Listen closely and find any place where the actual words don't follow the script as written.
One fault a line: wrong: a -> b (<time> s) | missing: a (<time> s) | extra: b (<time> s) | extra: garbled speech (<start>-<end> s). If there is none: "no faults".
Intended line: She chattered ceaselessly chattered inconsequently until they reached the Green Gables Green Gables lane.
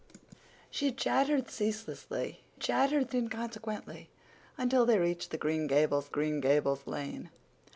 no faults